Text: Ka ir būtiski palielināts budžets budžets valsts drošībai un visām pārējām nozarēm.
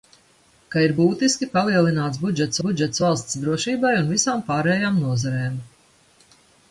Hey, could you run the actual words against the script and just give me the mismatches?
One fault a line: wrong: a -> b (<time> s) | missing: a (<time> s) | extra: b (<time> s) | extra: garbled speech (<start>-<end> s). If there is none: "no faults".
no faults